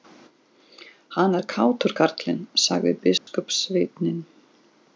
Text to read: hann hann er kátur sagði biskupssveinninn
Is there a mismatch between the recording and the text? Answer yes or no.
yes